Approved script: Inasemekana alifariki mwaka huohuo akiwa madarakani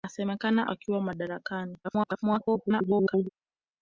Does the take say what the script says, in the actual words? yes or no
no